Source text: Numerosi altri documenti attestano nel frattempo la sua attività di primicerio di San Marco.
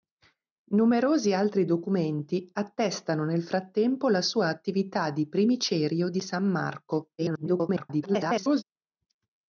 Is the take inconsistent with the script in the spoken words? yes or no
yes